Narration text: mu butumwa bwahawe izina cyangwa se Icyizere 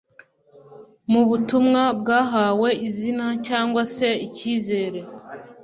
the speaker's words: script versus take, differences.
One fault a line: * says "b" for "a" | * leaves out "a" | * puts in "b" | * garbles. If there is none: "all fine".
all fine